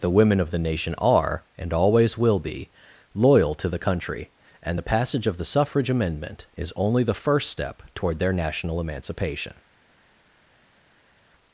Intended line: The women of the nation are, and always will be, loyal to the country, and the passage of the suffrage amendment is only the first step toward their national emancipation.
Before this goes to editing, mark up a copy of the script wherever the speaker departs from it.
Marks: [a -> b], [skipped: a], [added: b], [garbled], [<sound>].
The women of the nation are, and always will be, loyal to the country, and the passage of the suffrage amendment is only the first step toward their national emancipation.